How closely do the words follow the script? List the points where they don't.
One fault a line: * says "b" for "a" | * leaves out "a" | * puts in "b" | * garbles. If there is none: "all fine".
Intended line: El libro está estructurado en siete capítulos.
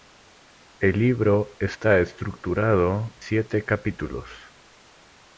* leaves out "en"